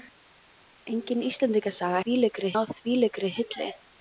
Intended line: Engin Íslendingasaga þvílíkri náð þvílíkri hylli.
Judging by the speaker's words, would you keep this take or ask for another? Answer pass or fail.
pass